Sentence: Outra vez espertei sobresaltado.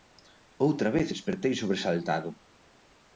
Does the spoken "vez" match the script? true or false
true